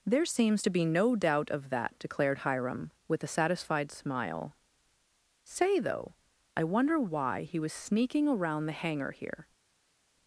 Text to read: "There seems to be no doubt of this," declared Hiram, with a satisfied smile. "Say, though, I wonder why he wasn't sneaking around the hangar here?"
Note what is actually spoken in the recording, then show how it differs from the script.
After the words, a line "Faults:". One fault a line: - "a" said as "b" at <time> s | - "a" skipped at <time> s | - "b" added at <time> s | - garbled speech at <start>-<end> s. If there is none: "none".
"There seems to be no doubt of that," declared Hiram, with a satisfied smile. "Say, though, I wonder why he was sneaking around the hangar here?"
Faults:
- "this" said as "that" at 1.7 s
- "wasn't" said as "was" at 7.6 s